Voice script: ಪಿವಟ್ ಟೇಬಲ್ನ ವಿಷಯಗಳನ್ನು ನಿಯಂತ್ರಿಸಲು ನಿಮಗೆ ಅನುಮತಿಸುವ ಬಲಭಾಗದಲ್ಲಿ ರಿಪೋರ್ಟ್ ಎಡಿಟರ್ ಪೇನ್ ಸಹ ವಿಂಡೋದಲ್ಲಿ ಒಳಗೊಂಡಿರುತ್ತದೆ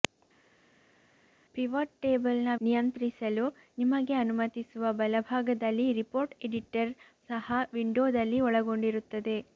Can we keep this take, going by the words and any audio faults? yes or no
no